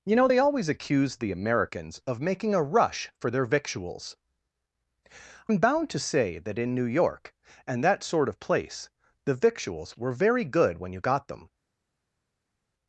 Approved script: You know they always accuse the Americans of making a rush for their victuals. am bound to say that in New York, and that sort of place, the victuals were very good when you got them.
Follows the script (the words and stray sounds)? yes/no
yes